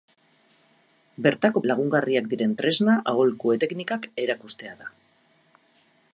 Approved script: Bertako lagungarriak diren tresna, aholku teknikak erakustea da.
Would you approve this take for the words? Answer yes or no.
yes